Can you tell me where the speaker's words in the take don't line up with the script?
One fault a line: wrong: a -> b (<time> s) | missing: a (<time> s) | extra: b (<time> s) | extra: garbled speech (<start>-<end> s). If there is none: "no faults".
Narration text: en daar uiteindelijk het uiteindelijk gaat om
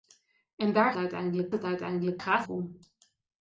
no faults